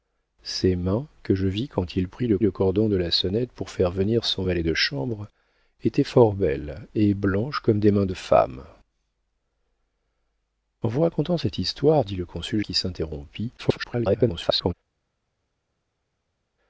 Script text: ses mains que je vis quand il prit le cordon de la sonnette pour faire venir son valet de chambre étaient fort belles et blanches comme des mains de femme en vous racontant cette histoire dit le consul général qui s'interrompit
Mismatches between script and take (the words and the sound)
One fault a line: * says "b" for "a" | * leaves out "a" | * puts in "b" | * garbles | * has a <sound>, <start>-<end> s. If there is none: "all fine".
* puts in "le"
* leaves out "général"
* garbles